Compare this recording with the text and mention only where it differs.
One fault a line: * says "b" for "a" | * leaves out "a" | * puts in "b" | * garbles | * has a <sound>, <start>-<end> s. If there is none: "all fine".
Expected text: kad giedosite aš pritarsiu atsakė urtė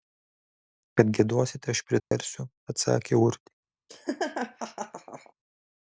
* has a dropout, 2.0-2.1 s
* has a laugh, 3.9-5.3 s